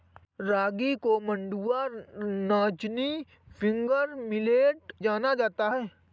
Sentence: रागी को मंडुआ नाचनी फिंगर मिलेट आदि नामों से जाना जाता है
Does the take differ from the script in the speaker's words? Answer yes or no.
yes